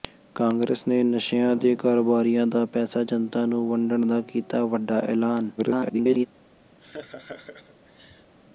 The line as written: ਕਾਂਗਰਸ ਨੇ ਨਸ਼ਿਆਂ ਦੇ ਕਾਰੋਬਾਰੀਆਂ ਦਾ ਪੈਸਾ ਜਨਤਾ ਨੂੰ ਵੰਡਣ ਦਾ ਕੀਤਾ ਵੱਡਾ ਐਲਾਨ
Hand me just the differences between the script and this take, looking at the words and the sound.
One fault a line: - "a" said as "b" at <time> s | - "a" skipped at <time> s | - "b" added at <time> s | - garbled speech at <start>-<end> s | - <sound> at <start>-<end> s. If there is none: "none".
- garbled speech at 5.6-6.3 s
- laugh at 6.8-8.3 s